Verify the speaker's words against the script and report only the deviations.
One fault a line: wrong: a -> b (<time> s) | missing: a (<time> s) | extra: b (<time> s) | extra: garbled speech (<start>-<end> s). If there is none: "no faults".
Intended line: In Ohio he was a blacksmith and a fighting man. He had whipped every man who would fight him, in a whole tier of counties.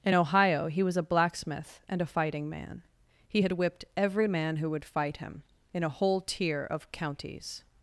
no faults